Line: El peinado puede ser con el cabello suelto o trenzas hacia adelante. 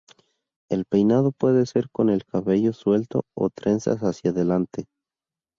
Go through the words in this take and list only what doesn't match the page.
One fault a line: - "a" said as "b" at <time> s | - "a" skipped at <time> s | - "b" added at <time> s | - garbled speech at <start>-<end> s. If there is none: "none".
none